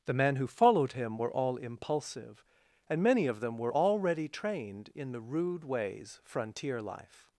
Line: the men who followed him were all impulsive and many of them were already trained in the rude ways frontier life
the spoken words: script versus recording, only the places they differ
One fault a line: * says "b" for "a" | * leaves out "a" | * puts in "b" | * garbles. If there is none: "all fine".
all fine